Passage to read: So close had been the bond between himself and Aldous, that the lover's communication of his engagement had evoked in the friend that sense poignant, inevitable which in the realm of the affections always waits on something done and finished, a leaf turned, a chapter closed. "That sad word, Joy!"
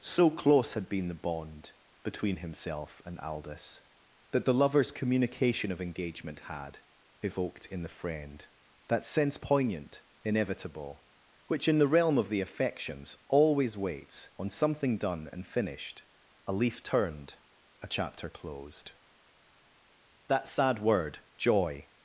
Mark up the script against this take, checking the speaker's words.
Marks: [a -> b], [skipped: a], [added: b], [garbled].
So close had been the bond between himself and Aldous, that the lover's communication of [skipped: his] engagement had evoked in the friend that sense poignant, inevitable which in the realm of the affections always waits on something done and finished, a leaf turned, a chapter closed. "That sad word, Joy!"